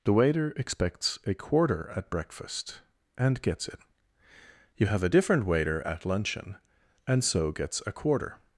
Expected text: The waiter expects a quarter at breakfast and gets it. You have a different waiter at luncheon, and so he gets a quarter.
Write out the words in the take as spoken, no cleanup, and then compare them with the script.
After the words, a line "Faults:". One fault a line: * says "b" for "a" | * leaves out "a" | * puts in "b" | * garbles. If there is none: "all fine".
The waiter expects a quarter at breakfast and gets it. You have a different waiter at luncheon, and so gets a quarter.
Faults:
* leaves out "he"